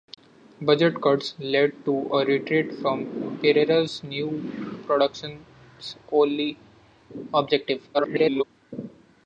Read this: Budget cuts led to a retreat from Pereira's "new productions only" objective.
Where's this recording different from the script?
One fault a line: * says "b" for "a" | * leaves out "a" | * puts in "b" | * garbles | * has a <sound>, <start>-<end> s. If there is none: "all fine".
* garbles